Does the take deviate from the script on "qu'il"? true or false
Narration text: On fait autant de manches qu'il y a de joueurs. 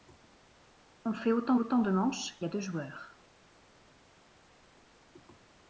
true